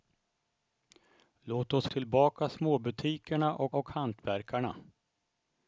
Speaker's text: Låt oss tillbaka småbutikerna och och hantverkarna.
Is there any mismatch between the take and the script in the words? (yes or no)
no